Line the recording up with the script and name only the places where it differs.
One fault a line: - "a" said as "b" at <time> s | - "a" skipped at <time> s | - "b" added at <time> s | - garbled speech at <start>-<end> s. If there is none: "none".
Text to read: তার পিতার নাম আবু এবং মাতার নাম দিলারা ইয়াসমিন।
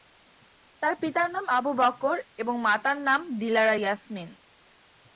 - "বকর" added at 1.7 s